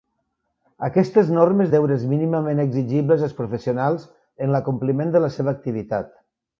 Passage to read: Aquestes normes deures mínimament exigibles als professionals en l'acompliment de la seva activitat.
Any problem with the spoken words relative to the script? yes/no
no